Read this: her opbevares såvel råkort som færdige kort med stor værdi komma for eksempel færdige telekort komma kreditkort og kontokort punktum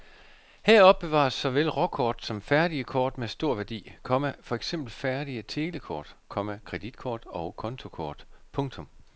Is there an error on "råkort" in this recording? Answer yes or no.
no